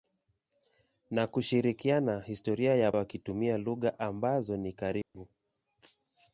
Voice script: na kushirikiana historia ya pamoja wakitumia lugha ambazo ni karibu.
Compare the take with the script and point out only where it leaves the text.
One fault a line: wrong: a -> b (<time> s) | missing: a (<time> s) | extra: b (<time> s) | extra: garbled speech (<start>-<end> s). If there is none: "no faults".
missing: pamoja (2.9 s)